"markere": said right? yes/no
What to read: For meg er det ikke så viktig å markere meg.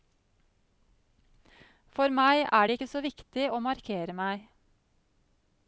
yes